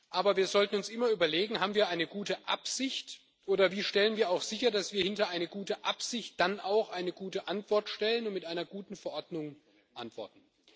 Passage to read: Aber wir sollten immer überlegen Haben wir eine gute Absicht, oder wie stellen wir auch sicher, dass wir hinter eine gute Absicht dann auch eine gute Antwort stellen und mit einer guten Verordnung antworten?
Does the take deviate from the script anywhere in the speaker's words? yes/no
yes